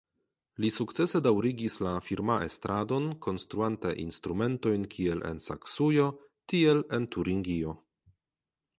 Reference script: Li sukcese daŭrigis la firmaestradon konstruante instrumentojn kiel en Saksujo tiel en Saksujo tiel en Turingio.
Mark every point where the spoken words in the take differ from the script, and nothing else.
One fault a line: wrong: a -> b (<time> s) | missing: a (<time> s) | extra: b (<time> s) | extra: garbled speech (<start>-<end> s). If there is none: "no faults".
missing: Saksujo tiel en (7.1 s)